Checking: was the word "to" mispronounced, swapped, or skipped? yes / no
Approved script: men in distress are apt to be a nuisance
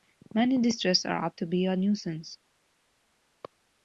no